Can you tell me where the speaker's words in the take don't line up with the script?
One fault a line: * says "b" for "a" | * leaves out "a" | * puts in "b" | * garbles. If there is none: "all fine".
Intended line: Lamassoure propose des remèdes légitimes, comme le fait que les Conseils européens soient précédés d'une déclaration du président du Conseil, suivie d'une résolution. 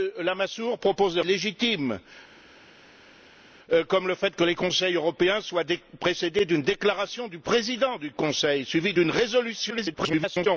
* leaves out "remèdes"
* garbles